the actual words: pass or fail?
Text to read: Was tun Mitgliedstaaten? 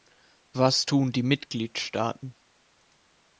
fail